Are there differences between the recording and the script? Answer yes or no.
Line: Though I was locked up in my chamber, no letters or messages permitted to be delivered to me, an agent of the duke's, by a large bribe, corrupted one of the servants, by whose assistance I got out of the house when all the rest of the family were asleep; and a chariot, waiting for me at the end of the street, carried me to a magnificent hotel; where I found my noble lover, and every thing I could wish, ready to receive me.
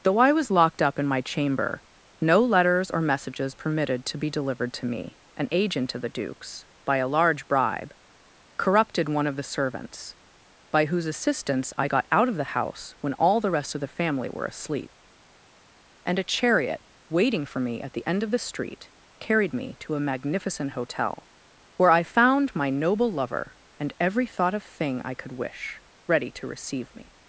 yes